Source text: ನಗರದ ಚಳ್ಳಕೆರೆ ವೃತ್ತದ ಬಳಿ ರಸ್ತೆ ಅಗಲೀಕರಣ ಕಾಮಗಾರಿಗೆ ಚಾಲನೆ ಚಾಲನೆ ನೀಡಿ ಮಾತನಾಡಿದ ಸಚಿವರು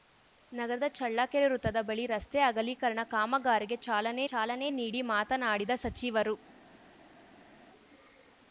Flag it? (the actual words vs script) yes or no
no